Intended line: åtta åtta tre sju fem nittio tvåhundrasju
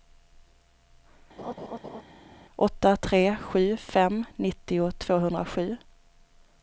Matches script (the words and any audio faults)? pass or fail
fail